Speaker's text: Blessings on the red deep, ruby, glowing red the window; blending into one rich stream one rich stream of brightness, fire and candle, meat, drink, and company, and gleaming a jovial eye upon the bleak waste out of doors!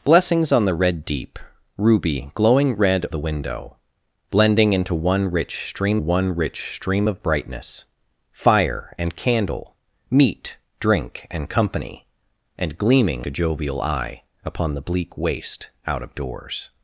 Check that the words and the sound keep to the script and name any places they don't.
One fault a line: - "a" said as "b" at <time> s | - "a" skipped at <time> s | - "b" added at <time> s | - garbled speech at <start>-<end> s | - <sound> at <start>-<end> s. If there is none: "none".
none